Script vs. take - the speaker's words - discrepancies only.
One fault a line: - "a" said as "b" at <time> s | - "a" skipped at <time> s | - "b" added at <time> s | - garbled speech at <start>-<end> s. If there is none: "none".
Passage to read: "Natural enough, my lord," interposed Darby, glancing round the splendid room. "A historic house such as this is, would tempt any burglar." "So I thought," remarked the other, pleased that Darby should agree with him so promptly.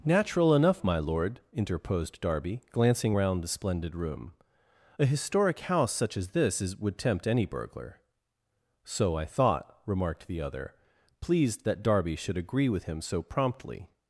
none